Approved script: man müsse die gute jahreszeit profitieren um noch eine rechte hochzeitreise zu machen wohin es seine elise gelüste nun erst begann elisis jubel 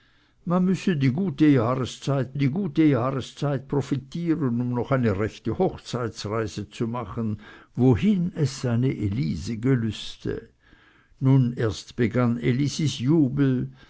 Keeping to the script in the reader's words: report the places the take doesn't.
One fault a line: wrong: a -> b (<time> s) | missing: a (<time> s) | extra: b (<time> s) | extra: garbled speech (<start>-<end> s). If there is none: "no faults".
extra: die gute jahreszeit (2.4 s)